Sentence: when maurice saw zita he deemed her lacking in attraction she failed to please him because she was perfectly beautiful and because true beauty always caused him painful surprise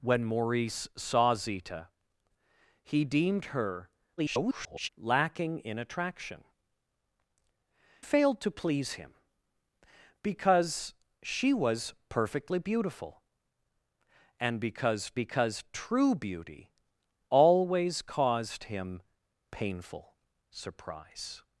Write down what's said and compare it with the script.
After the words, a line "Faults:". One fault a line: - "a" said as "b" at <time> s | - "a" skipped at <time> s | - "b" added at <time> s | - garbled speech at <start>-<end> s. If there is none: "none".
when maurice saw zita he deemed her [garbled] lacking in attraction failed to please him because she was perfectly beautiful and because because true beauty always caused him painful surprise
Faults:
- garbled speech at 4.2-4.9 s
- "she" skipped at 6.4 s
- "because" added at 15.1 s